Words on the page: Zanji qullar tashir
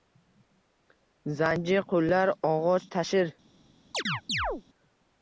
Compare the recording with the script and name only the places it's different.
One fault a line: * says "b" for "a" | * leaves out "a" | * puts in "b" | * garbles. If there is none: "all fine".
* puts in "og'och"